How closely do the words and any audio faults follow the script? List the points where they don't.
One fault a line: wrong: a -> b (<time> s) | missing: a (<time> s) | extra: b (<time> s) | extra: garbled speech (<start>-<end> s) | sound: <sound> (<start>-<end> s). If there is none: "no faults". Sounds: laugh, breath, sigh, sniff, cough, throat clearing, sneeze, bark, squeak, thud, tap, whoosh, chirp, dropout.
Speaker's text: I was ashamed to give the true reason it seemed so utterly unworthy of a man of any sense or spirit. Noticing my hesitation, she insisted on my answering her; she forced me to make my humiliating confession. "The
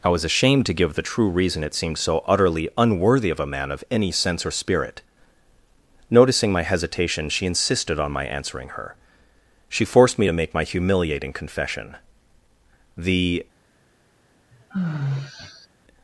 sound: sigh (14.5-15.7 s)